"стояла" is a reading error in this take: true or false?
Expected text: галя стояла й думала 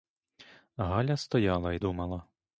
false